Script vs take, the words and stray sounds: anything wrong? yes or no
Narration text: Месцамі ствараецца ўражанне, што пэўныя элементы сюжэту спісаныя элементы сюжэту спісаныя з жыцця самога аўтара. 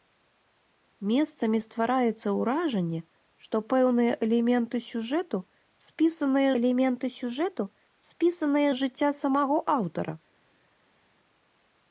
no